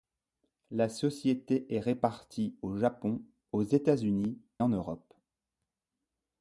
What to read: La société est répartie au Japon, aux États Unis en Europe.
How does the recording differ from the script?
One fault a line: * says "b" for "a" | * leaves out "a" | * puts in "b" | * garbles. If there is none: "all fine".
all fine